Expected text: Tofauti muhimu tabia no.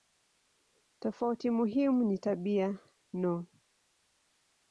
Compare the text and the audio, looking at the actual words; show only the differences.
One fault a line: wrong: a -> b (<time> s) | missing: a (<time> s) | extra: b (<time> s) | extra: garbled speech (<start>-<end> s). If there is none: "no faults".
extra: ni (2.0 s)